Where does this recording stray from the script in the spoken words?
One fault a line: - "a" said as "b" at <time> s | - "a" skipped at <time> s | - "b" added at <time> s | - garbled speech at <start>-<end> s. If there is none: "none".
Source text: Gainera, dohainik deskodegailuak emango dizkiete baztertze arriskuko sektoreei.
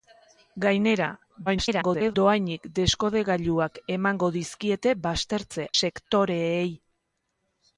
- garbled speech at 1.5-2.1 s
- "arriskuko" skipped at 5.7 s